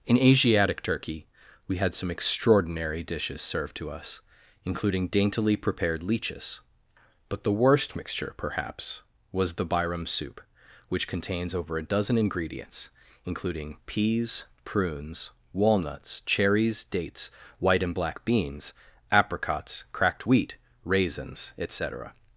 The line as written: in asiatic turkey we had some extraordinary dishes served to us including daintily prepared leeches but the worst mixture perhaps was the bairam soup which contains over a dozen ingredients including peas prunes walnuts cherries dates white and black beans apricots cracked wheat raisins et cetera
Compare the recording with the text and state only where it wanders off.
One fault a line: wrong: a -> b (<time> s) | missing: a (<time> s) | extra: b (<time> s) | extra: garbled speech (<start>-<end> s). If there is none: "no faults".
no faults